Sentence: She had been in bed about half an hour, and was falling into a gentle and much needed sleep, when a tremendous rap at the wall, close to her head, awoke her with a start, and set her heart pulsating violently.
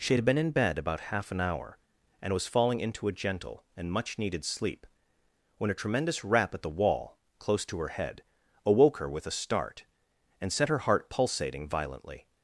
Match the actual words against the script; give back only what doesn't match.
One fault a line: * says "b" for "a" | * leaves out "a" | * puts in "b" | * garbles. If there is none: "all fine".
all fine